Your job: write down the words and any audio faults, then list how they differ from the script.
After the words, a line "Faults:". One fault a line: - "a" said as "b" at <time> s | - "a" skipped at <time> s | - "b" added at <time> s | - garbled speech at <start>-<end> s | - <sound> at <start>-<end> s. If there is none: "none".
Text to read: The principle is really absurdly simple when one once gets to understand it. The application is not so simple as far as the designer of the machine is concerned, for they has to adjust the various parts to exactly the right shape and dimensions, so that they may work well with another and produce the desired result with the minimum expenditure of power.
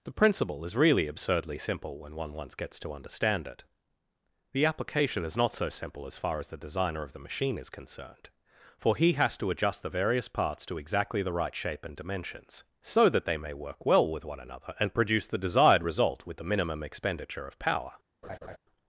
The principle is really absurdly simple when one once gets to understand it. The application is not so simple as far as the designer of the machine is concerned, for he has to adjust the various parts to exactly the right shape and dimensions, so that they may work well with one another and produce the desired result with the minimum expenditure of power.
Faults:
- "they" said as "he" at 8.9 s
- "one" added at 14.2 s
- laugh at 18.2-18.6 s